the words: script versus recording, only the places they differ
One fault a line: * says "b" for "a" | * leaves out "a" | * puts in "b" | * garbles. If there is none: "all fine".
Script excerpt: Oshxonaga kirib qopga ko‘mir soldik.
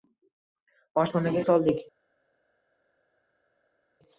* leaves out "kirib qopga ko‘mir"